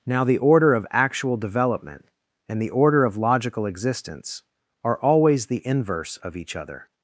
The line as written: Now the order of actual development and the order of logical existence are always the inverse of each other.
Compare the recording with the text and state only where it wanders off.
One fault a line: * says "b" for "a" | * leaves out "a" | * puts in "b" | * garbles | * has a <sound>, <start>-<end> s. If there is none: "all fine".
all fine